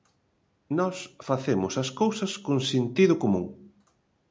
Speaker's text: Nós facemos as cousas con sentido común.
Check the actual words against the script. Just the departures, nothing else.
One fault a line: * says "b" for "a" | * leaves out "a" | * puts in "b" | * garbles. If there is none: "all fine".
all fine